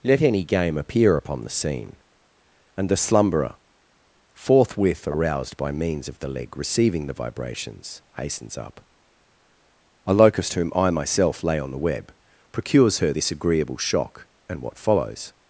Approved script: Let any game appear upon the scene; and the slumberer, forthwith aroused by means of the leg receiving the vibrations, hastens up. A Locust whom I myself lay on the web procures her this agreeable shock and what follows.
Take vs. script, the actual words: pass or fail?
pass